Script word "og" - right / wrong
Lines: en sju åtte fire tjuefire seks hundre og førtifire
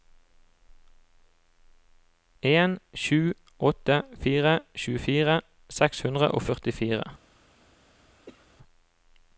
right